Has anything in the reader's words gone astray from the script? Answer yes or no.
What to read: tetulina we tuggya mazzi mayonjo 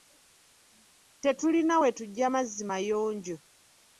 no